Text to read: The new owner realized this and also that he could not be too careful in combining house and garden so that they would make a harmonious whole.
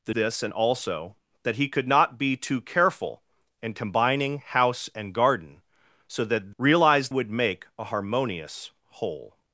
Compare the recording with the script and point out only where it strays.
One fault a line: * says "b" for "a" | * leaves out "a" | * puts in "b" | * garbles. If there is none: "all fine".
* leaves out "new owner realized"
* says "realized" for "they"